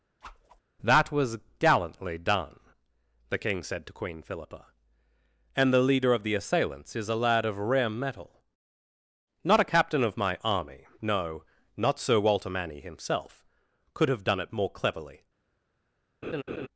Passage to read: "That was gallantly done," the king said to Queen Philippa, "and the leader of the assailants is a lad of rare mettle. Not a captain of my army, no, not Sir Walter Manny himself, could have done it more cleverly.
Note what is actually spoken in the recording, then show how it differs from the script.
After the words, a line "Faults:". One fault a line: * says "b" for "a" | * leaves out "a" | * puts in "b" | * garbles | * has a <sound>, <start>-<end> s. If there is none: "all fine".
"That was gallantly done," the king said to Queen Philippa, "and the leader of the assailants is a lad of rare mettle. Not a captain of my army, no, not Sir Walter Manny himself, could have done it more cleverly.
Faults:
* has a whoosh, 0.2-0.6 s
* has a laugh, 16.2-16.7 s